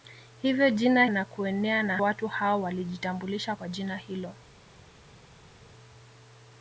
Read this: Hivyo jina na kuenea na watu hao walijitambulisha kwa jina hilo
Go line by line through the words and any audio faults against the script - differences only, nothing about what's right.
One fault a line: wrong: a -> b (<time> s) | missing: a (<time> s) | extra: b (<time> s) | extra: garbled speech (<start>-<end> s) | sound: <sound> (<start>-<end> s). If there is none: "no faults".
no faults